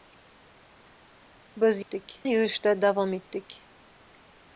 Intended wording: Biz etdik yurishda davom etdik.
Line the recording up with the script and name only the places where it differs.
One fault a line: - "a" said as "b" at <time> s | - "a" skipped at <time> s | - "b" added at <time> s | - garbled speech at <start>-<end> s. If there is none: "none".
none